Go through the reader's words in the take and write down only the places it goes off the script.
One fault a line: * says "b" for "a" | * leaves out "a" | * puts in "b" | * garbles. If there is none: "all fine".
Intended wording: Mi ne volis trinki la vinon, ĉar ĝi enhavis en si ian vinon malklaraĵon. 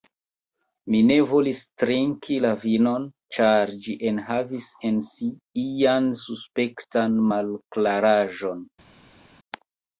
* says "suspektan" for "vinon"